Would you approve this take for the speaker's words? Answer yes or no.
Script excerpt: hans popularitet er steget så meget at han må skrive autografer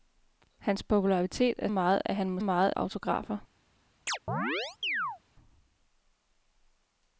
no